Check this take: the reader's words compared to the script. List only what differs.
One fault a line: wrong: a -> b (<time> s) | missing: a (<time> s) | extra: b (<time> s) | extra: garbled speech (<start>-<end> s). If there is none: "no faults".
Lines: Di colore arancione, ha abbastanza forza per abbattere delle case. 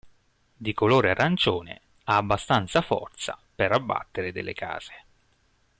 no faults